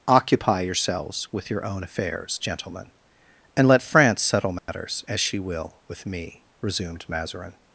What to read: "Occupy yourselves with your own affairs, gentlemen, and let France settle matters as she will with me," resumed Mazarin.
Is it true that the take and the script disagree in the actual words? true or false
false